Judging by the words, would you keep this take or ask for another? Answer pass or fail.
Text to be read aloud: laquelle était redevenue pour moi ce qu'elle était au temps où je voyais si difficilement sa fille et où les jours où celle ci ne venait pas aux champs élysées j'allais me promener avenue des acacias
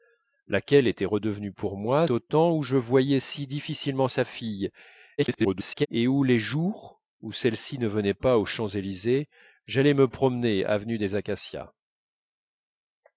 fail